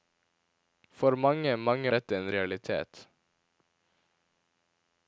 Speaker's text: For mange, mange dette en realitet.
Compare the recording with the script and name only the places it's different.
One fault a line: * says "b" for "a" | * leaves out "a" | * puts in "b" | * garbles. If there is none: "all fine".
all fine